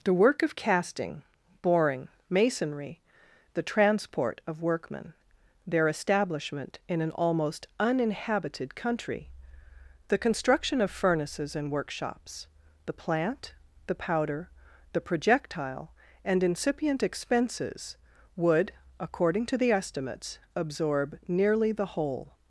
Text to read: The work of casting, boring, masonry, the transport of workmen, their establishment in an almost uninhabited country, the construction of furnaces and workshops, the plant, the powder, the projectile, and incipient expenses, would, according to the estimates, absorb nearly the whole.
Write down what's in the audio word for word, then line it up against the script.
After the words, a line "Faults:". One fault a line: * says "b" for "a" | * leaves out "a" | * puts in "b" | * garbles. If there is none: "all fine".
The work of casting, boring, masonry, the transport of workmen, their establishment in an almost uninhabited country, the construction of furnaces and workshops, the plant, the powder, the projectile, and incipient expenses, would, according to the estimates, absorb nearly the whole.
Faults:
all fine